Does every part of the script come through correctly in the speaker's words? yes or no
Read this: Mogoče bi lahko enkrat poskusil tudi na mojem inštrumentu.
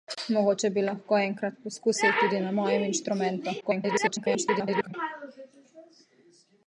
no